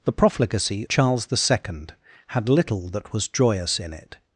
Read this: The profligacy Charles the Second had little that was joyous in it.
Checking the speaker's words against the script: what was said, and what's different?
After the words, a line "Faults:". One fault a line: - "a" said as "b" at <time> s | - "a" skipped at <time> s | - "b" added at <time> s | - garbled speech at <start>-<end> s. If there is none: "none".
The profligacy Charles the Second had little that was joyous in it.
Faults:
none